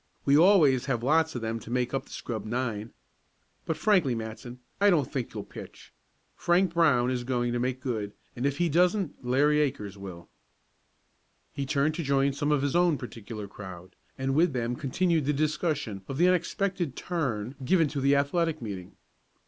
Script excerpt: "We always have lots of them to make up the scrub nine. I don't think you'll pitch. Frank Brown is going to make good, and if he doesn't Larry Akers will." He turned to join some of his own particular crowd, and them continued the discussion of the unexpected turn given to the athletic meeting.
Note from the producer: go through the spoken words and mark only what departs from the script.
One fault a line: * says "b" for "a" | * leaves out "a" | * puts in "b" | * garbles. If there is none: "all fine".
* puts in "But frankly Matson"
* puts in "with"